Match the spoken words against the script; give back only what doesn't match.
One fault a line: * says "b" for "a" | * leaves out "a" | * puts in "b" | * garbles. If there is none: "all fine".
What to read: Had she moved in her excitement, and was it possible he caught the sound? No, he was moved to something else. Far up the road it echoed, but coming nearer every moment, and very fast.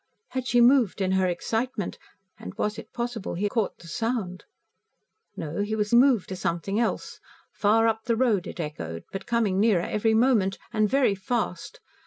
all fine